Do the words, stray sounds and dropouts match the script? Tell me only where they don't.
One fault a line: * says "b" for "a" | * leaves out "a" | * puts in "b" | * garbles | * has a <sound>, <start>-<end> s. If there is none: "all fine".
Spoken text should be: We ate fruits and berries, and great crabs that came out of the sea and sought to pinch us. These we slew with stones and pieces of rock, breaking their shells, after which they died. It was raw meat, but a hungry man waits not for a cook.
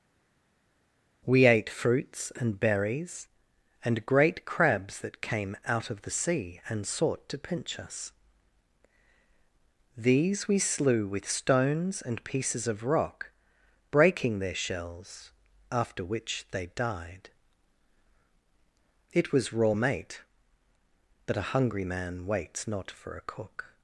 * says "mate" for "meat"